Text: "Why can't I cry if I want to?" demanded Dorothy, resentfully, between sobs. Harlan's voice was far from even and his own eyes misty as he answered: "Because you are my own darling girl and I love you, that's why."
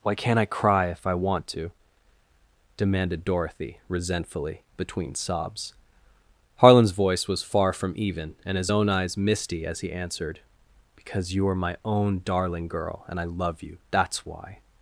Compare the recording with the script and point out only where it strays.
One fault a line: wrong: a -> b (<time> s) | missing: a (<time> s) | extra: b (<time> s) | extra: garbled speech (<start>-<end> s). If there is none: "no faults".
no faults